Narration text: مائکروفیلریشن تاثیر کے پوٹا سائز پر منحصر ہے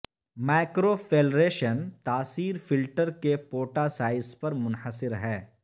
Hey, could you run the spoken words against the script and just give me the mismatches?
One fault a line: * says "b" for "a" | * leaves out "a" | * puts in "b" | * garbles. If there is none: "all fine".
* puts in "فلٹر"